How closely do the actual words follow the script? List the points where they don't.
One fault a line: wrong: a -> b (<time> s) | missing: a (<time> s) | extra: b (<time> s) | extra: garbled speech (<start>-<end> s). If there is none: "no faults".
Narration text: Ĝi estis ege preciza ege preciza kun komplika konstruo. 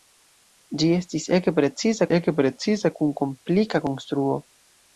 no faults